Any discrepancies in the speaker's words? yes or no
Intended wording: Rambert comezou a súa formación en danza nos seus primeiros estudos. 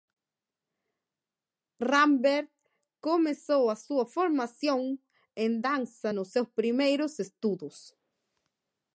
no